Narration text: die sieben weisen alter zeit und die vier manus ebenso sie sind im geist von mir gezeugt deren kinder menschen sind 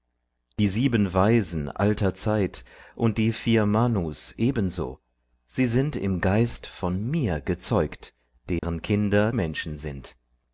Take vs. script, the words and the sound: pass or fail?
fail